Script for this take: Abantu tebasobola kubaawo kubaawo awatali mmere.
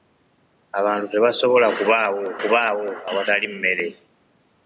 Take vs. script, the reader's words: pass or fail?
pass